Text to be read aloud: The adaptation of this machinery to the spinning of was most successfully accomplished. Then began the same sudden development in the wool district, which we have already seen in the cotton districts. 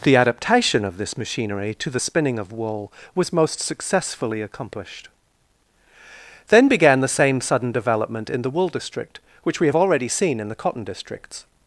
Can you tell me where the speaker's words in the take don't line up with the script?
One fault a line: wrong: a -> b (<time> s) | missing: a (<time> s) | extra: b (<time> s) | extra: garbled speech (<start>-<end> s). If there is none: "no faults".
extra: wool (2.5 s)